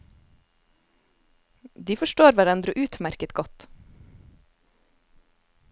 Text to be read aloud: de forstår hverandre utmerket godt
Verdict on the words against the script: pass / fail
pass